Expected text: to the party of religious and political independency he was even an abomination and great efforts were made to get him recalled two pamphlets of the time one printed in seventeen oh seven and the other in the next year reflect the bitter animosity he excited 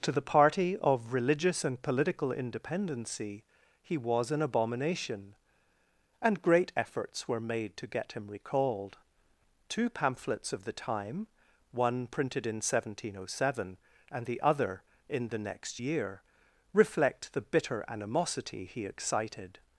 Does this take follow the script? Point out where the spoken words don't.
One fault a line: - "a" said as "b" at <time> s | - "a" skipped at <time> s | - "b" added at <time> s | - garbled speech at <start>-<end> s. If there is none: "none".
- "even" skipped at 4.3 s